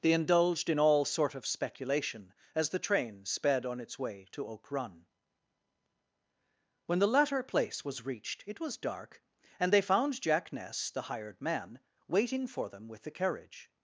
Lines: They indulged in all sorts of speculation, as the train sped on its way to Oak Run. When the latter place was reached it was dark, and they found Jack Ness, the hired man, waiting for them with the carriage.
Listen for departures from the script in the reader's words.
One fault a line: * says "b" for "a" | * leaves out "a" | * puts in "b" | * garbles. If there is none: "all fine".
* says "sort" for "sorts"